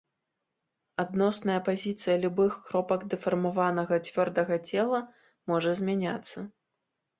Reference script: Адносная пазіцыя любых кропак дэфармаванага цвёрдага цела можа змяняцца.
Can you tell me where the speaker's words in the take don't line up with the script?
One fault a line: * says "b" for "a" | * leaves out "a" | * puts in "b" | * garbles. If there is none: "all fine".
all fine